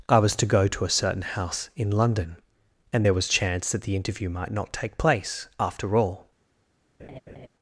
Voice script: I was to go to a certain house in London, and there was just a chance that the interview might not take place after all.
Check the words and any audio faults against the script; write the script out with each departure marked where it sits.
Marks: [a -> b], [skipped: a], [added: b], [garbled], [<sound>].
I was to go to a certain house in London, and there was [skipped: just a] chance that the interview might not take place after all. [laugh]